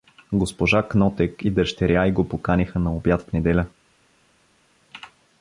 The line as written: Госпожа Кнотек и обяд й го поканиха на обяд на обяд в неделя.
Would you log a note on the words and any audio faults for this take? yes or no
yes